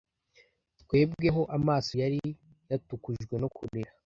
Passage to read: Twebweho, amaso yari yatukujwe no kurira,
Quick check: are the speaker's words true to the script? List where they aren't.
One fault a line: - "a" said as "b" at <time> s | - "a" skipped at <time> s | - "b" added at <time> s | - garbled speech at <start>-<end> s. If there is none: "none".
none